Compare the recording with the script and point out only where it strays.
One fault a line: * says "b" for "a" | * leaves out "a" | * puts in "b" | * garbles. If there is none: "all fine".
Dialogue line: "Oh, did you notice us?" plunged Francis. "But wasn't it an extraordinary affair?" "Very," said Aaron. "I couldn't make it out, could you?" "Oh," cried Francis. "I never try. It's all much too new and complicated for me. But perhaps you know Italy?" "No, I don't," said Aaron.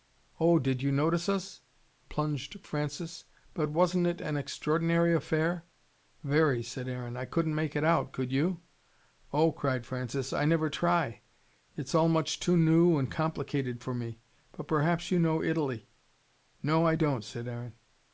all fine